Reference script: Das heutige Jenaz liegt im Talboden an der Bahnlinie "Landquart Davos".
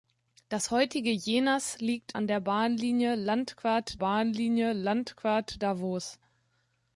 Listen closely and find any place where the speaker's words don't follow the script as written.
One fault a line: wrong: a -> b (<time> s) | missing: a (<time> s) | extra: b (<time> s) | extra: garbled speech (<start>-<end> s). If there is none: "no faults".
wrong: im Talboden an der -> an der Bahnlinie Landquart (2.1 s)